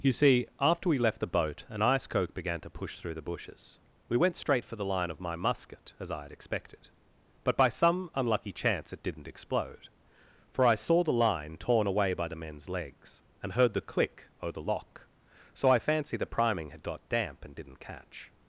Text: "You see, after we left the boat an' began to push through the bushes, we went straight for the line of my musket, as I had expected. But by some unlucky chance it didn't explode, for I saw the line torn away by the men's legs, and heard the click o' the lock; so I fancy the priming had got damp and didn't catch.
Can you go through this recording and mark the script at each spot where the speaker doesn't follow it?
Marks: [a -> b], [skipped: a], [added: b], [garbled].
"You see, after we left the boat an' [added: ice coke] began to push through the bushes, we went straight for the line of my musket, as I had expected. But by some unlucky chance it didn't explode, for I saw the line torn away by the men's legs, and heard the click o' the lock; so I fancy the priming had got damp and didn't catch.